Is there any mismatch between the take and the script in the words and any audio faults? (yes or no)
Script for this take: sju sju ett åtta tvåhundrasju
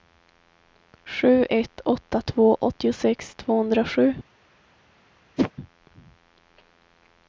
yes